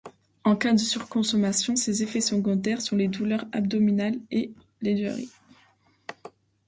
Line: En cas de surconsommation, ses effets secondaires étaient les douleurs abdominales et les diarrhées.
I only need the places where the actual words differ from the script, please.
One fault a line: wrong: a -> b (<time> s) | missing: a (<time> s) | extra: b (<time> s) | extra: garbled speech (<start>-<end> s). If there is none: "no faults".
wrong: étaient -> sont (2.8 s)